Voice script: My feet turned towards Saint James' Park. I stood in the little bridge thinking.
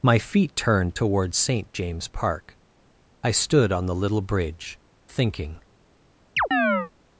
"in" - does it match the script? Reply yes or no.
no